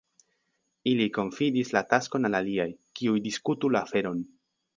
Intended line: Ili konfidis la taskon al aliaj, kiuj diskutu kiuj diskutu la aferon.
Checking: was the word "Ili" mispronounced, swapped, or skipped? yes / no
no